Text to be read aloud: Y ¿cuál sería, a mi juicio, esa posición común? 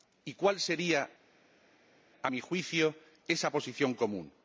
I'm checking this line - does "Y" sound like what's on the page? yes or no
yes